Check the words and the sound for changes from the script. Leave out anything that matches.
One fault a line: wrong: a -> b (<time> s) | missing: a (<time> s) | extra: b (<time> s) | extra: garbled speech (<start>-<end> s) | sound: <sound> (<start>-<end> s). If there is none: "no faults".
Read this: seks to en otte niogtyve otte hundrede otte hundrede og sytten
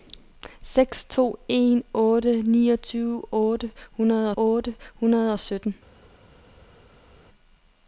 no faults